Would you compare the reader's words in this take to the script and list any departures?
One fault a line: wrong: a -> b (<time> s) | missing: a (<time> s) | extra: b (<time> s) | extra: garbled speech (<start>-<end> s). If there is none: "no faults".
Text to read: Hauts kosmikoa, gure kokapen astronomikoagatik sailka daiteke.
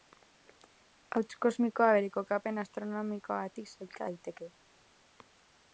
wrong: gure -> bere (2.0 s)